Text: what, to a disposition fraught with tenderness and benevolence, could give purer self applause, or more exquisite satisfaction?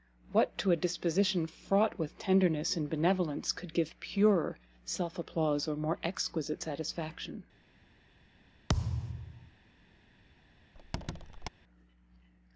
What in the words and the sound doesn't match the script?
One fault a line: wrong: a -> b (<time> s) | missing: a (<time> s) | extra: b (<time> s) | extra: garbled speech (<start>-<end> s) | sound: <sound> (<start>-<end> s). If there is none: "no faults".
sound: thud (8.7-9.5 s)
sound: squeak (10.7-11.5 s)